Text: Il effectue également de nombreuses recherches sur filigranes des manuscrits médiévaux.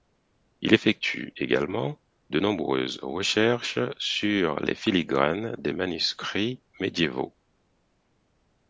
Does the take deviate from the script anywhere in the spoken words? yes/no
yes